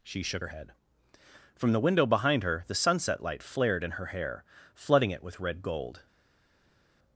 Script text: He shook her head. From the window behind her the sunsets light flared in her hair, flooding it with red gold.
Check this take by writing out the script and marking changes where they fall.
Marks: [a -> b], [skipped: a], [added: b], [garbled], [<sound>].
[He -> She] shook her head. From the window behind her the [sunsets -> sunset] light flared in her hair, flooding it with red gold.